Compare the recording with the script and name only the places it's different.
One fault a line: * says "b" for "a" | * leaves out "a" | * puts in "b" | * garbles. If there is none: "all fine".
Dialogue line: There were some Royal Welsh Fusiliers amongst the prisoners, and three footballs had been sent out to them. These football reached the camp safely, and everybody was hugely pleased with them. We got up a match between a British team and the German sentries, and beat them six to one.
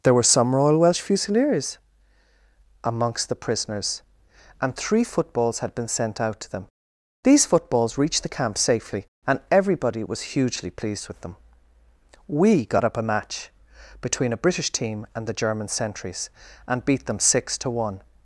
* says "footballs" for "football"